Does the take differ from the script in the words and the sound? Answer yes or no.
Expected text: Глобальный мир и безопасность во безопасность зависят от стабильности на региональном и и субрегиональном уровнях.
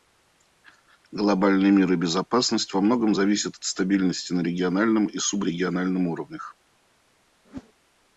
yes